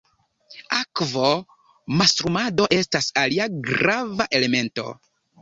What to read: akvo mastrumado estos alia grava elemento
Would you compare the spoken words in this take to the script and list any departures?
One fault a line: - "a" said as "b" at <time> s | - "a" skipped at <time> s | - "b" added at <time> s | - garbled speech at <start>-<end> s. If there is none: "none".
- "estos" said as "estas" at 2.8 s